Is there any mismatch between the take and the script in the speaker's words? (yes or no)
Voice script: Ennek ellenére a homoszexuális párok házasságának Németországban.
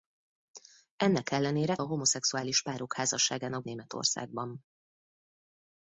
no